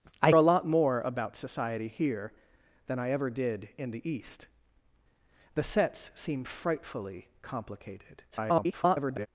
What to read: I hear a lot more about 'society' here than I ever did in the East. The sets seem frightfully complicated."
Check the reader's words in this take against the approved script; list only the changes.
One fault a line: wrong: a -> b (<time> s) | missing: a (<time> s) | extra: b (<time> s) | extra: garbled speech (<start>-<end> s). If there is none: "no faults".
missing: hear (0.3 s)
extra: garbled speech (8.3-9.3 s)